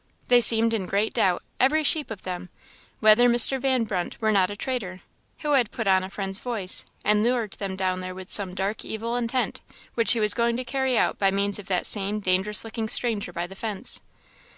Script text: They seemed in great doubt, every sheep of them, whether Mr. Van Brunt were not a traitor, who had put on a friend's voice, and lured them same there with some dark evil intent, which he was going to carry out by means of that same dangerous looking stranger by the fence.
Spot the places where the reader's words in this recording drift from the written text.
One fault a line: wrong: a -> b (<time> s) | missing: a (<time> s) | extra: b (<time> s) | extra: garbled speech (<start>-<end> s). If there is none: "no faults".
wrong: same -> down (7.8 s)